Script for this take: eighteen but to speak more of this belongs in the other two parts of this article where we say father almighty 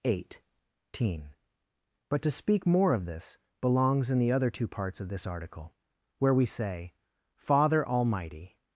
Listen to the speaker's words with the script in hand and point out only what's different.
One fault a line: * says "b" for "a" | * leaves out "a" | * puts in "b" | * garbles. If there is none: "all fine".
all fine